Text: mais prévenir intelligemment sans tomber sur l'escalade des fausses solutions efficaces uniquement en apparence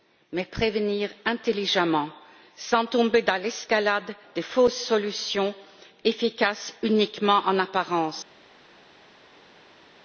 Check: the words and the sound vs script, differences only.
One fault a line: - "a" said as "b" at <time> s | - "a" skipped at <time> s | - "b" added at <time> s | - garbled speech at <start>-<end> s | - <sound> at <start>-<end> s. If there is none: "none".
- "sur" said as "dans" at 3.2 s